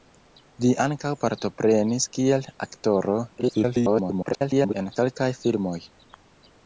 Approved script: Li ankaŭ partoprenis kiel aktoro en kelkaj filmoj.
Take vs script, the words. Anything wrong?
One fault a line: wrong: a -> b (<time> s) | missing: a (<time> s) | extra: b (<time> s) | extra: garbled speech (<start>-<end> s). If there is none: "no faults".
extra: garbled speech (3.4-4.7 s)